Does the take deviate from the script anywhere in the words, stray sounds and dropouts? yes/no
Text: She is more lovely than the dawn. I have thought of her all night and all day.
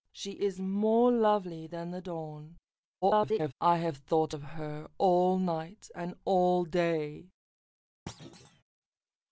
yes